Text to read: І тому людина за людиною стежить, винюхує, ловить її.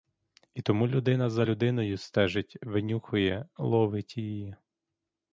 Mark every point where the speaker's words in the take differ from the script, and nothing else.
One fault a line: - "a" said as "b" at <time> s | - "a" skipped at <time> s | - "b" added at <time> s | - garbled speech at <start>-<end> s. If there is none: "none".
none